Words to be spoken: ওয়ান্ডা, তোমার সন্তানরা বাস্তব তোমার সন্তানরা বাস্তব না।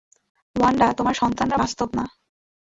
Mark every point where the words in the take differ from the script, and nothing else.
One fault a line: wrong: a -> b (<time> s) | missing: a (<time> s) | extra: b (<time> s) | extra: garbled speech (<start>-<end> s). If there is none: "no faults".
missing: তোমার সন্তানরা বাস্তব (1.9 s)